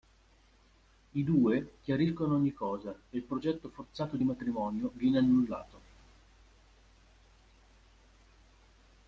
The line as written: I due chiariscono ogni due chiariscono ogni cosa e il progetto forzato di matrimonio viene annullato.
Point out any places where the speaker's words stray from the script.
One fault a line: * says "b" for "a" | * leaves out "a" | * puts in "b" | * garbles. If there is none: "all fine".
* leaves out "due chiariscono ogni"